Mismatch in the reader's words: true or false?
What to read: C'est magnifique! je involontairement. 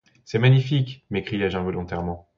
true